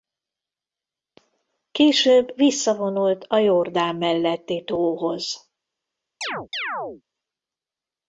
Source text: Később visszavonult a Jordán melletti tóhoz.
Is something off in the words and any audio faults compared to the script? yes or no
yes